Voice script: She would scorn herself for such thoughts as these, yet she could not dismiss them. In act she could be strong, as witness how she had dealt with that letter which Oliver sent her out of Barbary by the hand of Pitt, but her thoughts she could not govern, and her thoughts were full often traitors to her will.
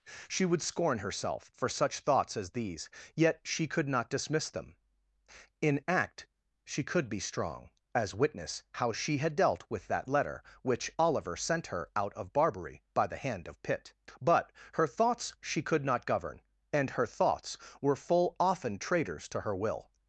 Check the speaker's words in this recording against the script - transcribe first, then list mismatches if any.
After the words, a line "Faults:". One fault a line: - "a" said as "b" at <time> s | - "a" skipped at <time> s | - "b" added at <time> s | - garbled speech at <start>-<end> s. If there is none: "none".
She would scorn herself for such thoughts as these, yet she could not dismiss them. In act she could be strong, as witness how she had dealt with that letter which Oliver sent her out of Barbary by the hand of Pitt, but her thoughts she could not govern, and her thoughts were full often traitors to her will.
Faults:
none